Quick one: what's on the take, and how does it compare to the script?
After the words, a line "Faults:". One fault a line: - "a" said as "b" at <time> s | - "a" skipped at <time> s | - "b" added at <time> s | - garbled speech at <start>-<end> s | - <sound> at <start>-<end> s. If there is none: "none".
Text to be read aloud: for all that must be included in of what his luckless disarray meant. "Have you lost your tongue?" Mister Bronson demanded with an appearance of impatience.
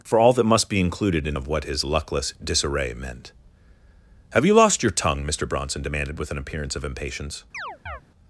for all that must be included in of what his luckless disarray meant. "Have you lost your tongue?" Mister Bronson demanded with an appearance of impatience.
Faults:
- chirp at 7.5-8.0 s